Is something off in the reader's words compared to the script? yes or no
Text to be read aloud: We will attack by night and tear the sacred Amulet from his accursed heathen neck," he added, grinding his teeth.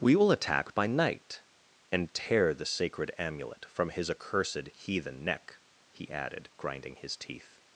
no